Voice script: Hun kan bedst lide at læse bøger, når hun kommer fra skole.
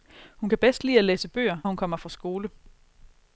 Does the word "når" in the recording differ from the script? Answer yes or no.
yes